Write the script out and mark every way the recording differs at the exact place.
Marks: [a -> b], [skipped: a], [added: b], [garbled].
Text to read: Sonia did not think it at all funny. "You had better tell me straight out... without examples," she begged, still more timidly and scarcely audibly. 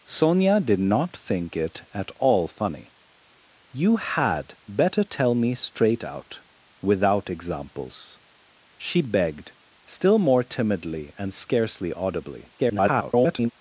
Sonia did not think it at all funny. "You had better tell me straight out... without examples," she begged, still more timidly and scarcely audibly. [garbled]